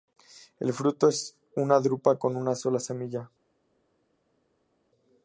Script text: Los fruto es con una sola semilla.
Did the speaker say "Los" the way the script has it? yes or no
no